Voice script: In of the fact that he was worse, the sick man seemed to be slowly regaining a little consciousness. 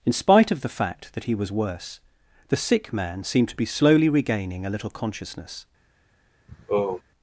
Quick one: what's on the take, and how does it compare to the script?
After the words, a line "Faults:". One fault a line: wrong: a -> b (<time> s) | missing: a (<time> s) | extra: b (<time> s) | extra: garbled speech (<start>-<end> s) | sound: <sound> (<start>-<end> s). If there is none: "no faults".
In spite of the fact that he was worse, the sick man seemed to be slowly regaining a little consciousness.
Faults:
extra: spite (0.1 s)
sound: sigh (6.5-7.0 s)